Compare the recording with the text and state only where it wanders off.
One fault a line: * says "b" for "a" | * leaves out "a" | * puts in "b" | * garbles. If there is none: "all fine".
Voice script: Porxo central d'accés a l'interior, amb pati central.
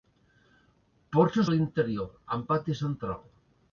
* leaves out "central d'accés"